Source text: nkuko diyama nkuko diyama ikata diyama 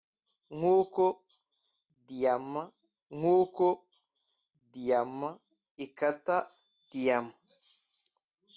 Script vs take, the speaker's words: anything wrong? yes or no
no